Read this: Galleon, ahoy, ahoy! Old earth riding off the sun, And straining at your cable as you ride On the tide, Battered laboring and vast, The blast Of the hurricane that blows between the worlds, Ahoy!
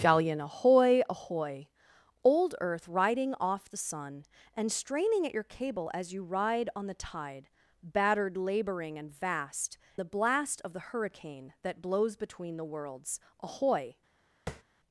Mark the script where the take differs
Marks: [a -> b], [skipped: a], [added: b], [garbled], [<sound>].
Galleon, ahoy, ahoy! Old earth riding off the sun, And straining at your cable as you ride On the tide, Battered laboring and vast, The blast Of the hurricane that blows between the worlds, Ahoy! [tap]